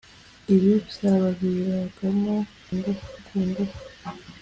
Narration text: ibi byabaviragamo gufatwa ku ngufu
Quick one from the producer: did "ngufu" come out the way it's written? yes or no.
yes